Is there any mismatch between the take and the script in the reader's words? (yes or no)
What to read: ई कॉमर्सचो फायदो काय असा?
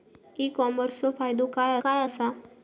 yes